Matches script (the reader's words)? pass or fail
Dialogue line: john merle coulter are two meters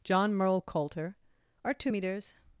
pass